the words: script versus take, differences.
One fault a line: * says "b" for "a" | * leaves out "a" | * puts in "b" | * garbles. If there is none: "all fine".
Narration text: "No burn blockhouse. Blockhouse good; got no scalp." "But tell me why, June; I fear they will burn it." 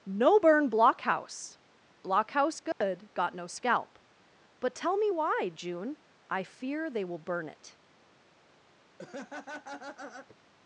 all fine